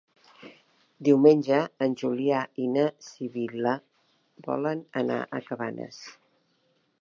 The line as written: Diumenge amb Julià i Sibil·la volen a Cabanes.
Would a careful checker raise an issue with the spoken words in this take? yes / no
yes